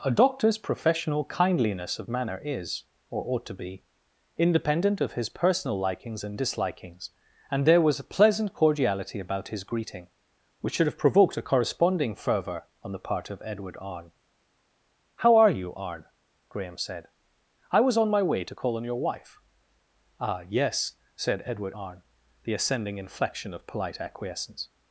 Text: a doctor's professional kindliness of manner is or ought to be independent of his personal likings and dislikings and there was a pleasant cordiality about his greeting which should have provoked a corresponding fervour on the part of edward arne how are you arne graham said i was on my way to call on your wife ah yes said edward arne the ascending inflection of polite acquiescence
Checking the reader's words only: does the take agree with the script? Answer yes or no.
yes